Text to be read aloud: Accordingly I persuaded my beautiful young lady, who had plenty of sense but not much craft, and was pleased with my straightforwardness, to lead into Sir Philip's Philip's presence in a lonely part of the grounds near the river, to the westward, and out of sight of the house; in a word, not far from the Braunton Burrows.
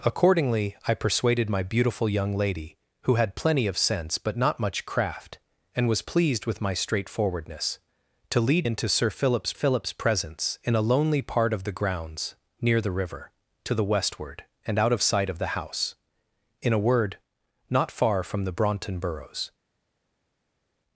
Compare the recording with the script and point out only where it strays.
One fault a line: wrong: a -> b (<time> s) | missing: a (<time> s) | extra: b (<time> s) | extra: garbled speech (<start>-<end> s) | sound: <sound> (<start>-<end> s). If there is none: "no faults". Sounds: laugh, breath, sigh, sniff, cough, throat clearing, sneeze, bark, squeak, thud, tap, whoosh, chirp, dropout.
no faults